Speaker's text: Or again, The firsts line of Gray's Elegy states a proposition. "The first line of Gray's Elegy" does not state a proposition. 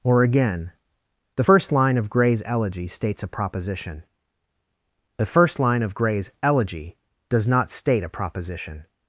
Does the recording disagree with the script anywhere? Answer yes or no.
yes